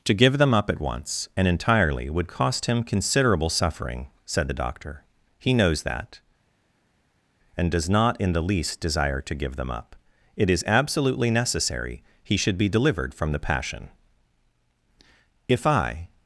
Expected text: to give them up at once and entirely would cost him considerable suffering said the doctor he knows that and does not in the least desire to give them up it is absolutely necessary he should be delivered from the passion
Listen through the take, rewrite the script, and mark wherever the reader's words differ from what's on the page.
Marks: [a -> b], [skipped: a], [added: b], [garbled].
to give them up at once and entirely would cost him considerable suffering said the doctor he knows that and does not in the least desire to give them up it is absolutely necessary he should be delivered from the passion [added: if i]